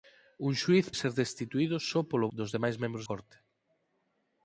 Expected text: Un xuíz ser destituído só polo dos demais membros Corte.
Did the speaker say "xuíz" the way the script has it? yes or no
yes